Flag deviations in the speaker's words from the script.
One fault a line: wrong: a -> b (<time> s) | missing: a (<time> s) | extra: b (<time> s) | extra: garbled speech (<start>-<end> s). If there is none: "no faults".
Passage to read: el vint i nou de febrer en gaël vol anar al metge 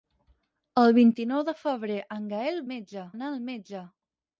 wrong: vol -> metge (2.7 s)